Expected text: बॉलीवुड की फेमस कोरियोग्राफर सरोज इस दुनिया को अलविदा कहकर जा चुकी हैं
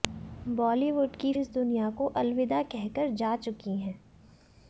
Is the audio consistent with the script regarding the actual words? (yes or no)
no